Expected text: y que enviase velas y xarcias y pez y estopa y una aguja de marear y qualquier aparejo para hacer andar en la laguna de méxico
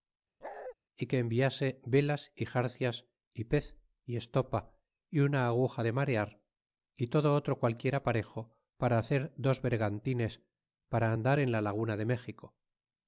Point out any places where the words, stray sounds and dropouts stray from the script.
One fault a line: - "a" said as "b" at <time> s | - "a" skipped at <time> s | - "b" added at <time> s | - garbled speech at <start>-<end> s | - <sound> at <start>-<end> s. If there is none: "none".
- bark at 0.4-0.8 s
- "todo otro" added at 7.1 s
- "dos vergantines para" added at 9.4 s